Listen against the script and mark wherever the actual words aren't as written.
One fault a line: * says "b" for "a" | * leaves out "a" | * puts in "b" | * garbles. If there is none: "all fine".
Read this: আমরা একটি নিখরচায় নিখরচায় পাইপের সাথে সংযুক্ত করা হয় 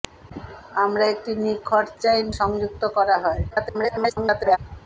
* leaves out "নিখরচায় পাইপের সাথে"
* garbles